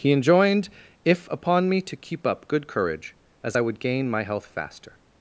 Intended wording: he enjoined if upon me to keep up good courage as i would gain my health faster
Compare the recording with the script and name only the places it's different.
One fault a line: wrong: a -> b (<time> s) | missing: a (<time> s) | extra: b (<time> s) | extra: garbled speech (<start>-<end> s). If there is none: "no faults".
no faults